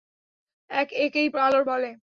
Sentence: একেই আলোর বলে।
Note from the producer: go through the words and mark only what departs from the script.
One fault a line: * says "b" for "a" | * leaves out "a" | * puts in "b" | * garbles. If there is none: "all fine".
all fine